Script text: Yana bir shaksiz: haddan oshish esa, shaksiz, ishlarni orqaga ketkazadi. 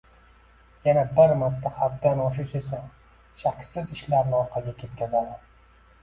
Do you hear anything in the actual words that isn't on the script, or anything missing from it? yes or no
yes